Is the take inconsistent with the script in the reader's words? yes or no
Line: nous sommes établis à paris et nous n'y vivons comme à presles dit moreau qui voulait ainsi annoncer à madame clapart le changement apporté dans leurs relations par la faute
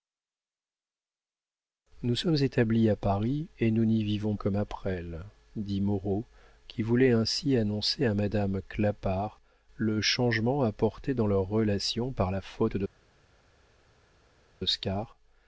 no